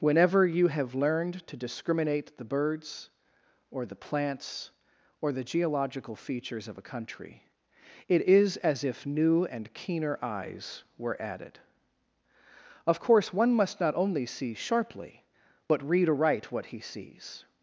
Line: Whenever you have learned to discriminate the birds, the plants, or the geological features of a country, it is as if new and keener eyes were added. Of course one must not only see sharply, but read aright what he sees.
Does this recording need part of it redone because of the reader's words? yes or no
yes